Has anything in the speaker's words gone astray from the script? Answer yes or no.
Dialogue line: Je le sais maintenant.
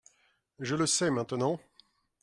no